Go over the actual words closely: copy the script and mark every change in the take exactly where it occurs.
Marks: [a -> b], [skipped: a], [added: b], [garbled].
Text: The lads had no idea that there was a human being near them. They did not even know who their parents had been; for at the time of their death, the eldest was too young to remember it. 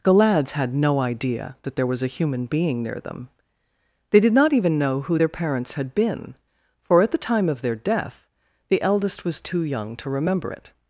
The lads had no idea that there was a human being near them. They did not even know who their parents had been; for at the time of their death, the eldest was too young to remember it.